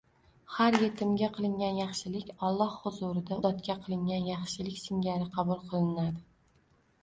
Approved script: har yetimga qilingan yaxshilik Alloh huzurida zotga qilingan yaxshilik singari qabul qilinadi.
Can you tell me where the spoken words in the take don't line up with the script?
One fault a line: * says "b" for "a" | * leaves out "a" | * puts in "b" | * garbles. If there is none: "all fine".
all fine